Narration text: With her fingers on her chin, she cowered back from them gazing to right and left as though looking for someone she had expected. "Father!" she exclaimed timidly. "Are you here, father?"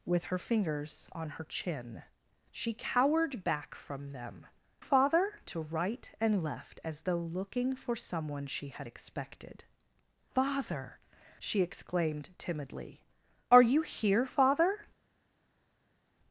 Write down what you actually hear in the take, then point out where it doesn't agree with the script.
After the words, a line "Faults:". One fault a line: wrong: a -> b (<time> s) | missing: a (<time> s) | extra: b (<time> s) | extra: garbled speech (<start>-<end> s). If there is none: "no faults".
With her fingers on her chin, she cowered back from them father to right and left as though looking for someone she had expected. "Father!" she exclaimed timidly. "Are you here, father?"
Faults:
wrong: gazing -> father (4.8 s)